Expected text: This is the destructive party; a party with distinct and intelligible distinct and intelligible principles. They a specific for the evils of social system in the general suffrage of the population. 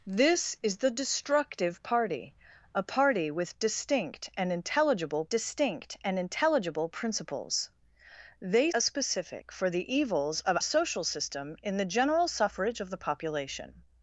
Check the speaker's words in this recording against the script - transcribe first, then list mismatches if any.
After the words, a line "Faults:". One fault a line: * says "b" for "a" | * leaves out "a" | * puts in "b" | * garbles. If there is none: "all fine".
This is the destructive party; a party with distinct and intelligible distinct and intelligible principles. They a specific for the evils of social system in the general suffrage of the population.
Faults:
all fine